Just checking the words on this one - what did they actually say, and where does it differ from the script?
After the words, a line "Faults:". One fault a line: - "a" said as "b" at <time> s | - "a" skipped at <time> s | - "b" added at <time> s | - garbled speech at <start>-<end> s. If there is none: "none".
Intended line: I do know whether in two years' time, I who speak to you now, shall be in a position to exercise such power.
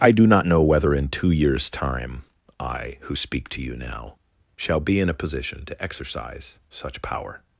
I do not know whether in two years' time, I who speak to you now, shall be in a position to exercise such power.
Faults:
- "not" added at 0.2 s